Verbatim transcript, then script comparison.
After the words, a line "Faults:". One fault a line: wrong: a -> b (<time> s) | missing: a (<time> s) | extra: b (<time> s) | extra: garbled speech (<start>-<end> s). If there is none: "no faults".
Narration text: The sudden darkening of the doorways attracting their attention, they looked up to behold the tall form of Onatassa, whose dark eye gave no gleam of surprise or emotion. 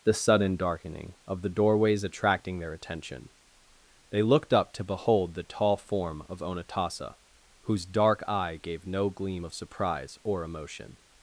The sudden darkening of the doorways attracting their attention, they looked up to behold the tall form of Onatassa, whose dark eye gave no gleam of surprise or emotion.
Faults:
no faults